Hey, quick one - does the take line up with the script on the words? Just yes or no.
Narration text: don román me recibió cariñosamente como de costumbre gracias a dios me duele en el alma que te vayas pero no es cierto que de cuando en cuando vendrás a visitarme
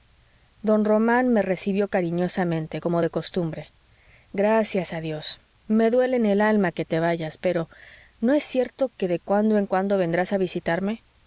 yes